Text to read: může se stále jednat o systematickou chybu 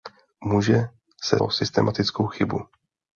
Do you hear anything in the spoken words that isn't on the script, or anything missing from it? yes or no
yes